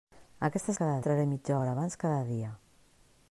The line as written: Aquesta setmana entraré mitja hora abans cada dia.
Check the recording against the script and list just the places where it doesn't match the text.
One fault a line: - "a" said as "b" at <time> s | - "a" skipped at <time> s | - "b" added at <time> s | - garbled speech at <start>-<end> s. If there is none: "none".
- "setmana" said as "cada" at 0.7 s